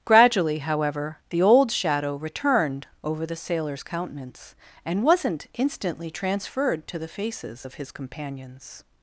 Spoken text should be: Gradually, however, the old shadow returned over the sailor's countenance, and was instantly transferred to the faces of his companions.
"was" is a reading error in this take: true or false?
true